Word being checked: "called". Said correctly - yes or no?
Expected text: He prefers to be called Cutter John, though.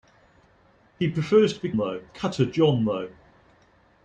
no